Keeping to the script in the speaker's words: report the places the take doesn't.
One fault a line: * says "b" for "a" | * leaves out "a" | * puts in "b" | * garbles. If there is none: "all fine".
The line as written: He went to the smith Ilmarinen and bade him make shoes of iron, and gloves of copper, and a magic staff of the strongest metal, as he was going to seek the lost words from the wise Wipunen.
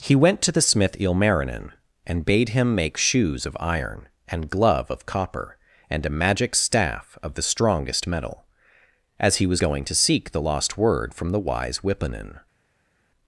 * says "glove" for "gloves"
* says "word" for "words"